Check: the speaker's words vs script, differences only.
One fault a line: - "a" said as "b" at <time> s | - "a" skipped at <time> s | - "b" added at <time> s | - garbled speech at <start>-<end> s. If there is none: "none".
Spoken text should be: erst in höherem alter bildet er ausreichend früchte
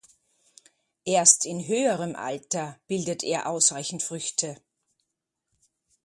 none